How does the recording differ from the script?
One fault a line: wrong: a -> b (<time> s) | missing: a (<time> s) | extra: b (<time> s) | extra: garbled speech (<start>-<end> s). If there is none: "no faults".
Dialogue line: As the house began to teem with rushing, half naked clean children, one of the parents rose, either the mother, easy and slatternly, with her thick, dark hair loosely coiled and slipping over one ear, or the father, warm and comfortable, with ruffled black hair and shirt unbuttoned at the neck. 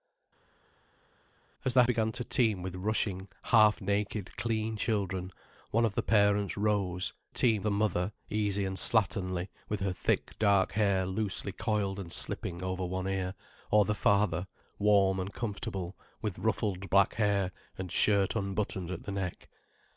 missing: house (1.8 s)
wrong: either -> teem (7.3 s)